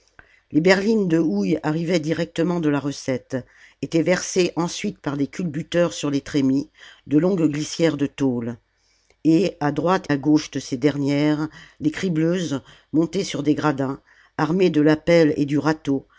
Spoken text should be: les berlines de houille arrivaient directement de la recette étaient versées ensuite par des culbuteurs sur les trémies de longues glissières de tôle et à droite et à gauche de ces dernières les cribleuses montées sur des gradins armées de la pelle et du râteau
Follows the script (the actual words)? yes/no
no